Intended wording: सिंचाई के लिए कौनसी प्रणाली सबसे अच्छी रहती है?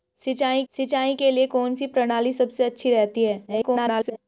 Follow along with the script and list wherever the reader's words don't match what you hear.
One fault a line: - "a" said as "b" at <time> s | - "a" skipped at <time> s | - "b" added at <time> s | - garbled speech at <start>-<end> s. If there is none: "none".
- "सिंचाई" added at 0.7 s
- garbled speech at 3.5-4.2 s